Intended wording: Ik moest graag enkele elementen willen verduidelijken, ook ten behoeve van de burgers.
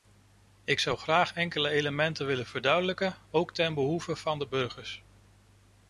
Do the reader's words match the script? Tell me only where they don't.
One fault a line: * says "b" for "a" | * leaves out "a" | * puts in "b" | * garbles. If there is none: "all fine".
* says "zou" for "moest"